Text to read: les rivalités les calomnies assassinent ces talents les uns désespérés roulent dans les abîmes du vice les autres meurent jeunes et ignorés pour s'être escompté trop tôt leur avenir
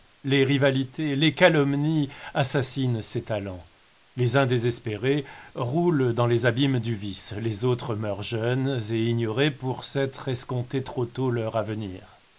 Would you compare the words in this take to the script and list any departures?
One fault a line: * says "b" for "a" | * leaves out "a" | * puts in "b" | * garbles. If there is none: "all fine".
all fine